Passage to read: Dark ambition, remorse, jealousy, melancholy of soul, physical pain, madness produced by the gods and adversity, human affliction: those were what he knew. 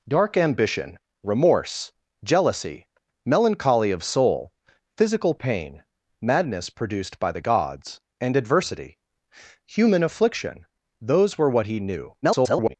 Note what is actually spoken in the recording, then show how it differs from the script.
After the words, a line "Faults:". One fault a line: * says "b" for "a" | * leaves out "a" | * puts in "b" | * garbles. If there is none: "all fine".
Dark ambition, remorse, jealousy, melancholy of soul, physical pain, madness produced by the gods and adversity, human affliction: those were what he knew. [garbled]
Faults:
* garbles